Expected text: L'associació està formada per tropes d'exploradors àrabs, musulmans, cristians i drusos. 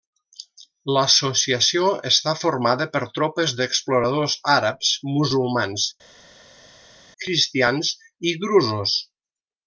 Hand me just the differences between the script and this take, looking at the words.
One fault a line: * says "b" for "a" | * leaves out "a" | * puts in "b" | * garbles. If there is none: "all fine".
all fine